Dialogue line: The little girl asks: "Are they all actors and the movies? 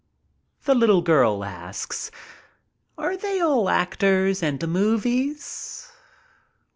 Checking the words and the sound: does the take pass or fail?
pass